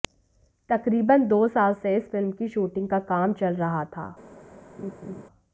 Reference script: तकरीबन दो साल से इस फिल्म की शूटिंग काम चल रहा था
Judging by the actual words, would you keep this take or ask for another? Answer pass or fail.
fail